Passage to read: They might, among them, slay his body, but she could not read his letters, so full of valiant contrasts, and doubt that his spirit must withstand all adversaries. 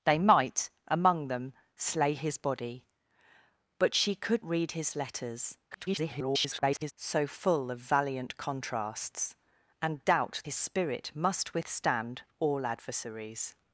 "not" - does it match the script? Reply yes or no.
no